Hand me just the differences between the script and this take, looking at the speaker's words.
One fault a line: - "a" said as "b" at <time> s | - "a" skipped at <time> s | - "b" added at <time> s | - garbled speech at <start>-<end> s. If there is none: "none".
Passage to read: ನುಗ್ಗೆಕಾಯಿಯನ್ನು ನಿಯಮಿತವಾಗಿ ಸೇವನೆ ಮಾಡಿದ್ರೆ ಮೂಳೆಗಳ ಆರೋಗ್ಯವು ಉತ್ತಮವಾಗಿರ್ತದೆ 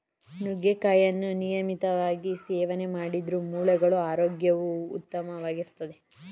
none